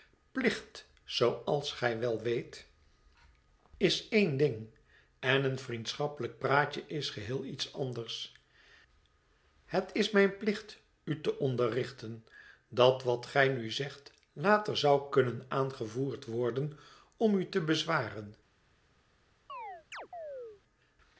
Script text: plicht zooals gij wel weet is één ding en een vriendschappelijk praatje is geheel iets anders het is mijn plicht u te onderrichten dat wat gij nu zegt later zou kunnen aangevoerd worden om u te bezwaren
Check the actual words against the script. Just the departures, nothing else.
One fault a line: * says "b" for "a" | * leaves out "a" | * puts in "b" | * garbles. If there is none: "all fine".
all fine